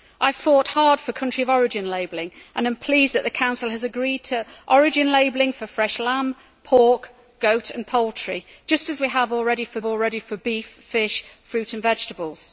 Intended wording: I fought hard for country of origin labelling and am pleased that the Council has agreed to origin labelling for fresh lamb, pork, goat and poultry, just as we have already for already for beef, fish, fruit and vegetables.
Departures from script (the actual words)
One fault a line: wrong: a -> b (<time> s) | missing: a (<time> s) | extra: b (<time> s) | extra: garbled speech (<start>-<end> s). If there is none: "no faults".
no faults